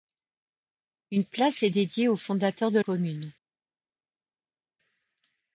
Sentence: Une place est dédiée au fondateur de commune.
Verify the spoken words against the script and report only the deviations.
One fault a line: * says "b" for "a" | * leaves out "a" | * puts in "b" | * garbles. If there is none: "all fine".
all fine